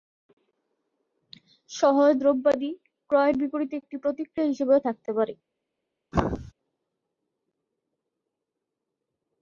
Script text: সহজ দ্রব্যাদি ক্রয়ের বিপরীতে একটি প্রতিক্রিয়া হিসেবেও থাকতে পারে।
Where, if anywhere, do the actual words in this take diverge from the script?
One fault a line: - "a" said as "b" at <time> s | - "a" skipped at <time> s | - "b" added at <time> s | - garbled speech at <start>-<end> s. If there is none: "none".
none